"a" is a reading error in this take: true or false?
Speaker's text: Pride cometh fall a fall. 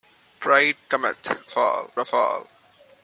false